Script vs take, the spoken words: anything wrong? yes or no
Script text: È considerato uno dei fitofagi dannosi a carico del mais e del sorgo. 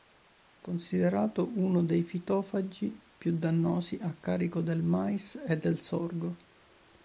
yes